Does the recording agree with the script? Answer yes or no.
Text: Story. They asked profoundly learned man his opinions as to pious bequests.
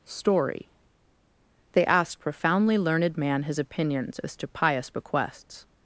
yes